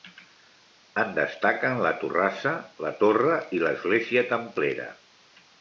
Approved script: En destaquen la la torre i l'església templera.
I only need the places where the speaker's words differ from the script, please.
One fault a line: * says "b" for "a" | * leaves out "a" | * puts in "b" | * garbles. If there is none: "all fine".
* puts in "torrassa"